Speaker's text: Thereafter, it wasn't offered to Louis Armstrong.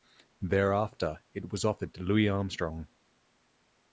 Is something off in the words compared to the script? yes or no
yes